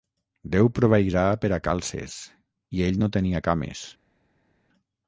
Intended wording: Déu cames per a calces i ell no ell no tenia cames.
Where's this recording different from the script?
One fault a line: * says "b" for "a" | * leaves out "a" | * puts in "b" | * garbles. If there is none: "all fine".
* says "proveirà" for "cames"
* leaves out "ell no"